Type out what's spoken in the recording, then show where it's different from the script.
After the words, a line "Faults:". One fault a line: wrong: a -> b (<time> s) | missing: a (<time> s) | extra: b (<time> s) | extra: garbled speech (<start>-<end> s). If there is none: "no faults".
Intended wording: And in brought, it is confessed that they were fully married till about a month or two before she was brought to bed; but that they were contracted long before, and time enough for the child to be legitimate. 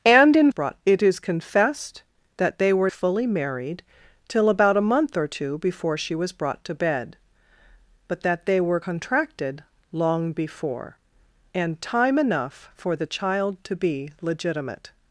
And in brought, it is confessed that they were fully married till about a month or two before she was brought to bed; but that they were contracted long before, and time enough for the child to be legitimate.
Faults:
no faults